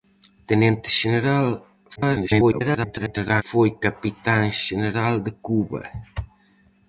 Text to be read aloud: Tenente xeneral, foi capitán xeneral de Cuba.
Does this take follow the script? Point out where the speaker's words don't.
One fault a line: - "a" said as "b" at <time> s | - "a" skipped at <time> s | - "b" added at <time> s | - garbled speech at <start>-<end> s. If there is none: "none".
- garbled speech at 2.0-3.4 s